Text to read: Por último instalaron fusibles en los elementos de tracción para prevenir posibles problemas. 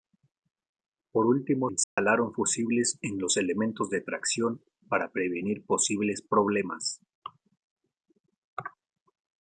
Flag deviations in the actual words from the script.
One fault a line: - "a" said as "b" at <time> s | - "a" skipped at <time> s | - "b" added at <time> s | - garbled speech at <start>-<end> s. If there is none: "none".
none